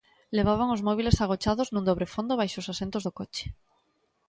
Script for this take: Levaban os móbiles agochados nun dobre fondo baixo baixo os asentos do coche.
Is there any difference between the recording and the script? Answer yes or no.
yes